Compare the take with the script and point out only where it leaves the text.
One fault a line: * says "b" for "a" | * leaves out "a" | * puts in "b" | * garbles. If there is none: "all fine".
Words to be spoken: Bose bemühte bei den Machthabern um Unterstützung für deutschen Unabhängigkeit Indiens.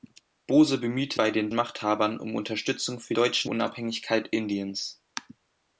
all fine